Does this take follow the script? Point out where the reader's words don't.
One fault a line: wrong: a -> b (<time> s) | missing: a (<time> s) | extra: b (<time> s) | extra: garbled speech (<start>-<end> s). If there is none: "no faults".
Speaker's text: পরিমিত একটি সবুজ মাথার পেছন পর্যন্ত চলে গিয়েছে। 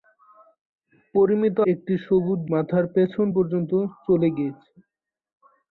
no faults